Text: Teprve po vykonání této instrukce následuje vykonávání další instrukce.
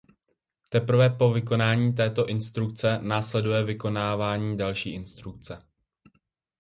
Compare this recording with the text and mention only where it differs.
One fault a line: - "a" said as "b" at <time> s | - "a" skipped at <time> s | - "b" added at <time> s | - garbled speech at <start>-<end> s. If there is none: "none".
none